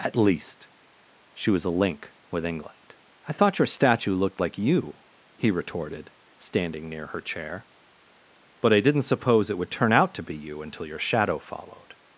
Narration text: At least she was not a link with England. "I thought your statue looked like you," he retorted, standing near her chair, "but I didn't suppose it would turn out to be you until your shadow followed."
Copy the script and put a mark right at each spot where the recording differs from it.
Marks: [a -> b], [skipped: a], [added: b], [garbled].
At least she was [skipped: not] a link with England. "I thought your statue looked like you," he retorted, standing near her chair, "but I didn't suppose it would turn out to be you until your shadow followed."